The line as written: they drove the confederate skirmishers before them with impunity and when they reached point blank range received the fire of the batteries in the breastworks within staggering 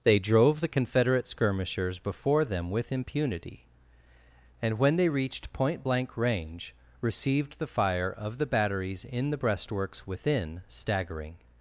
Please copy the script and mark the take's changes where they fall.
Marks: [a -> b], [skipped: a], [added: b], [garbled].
they drove the confederate skirmishers before them with impunity and when they reached point blank range received the fire of the batteries in the breastworks within staggering